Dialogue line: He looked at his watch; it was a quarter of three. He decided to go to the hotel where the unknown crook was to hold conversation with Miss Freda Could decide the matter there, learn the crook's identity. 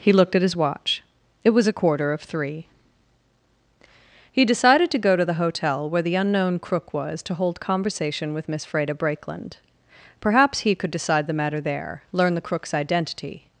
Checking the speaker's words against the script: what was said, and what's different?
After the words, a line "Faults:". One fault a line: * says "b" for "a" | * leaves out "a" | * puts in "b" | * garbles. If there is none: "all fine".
He looked at his watch; it was a quarter of three. He decided to go to the hotel where the unknown crook was to hold conversation with Miss Freda Brakeland. Perhaps he could decide the matter there, learn the crook's identity.
Faults:
* puts in "Brakeland Perhaps he"